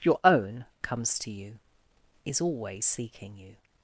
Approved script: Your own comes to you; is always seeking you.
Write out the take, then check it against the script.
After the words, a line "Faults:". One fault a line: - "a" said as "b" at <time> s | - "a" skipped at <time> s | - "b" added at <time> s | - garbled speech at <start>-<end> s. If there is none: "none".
Your own comes to you; is always seeking you.
Faults:
none